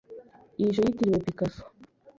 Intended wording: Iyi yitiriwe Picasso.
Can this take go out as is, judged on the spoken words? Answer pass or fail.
pass